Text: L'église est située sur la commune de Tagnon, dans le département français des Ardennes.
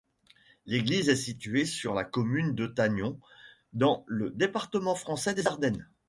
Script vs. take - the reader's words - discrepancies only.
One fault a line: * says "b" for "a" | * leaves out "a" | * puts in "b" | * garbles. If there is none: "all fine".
all fine